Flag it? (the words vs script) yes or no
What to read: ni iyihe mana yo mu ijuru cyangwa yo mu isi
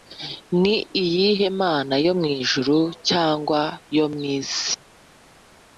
no